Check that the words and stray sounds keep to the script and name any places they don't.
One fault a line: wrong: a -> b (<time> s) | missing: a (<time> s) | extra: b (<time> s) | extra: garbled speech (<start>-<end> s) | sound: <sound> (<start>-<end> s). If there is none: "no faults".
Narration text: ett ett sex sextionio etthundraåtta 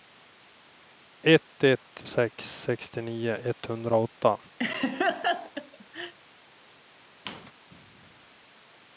sound: laugh (4.6-6.1 s)
sound: squeak (7.3-7.5 s)